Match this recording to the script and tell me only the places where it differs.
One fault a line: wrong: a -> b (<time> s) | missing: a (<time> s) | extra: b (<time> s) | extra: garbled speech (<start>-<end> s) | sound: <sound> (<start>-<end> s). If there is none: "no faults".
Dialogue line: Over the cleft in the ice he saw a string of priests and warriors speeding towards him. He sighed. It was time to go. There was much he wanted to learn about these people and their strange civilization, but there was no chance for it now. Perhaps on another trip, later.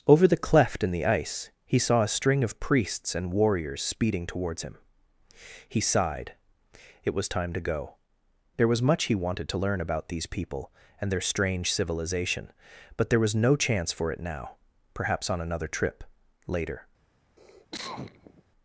sound: cough (17.4-18.4 s)